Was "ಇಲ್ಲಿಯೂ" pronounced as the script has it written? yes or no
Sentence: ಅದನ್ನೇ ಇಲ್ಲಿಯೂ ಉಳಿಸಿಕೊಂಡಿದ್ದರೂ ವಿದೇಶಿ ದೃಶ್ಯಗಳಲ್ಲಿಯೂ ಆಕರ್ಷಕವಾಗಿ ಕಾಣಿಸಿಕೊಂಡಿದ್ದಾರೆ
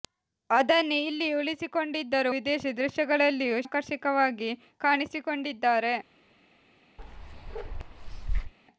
yes